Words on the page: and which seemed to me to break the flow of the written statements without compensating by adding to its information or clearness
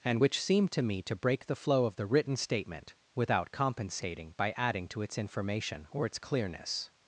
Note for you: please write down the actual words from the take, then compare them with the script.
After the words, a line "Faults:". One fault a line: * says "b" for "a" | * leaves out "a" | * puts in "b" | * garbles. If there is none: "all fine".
and which seemed to me to break the flow of the written statement without compensating by adding to its information or its clearness
Faults:
* says "statement" for "statements"
* puts in "its"